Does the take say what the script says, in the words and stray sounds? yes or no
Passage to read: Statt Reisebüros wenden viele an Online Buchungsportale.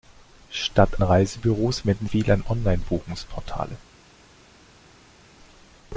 yes